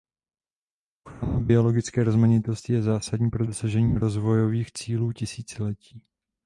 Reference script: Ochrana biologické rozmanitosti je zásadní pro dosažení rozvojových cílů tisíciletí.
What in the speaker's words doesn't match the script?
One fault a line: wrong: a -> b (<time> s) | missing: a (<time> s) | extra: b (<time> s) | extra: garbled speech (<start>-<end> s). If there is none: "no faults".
no faults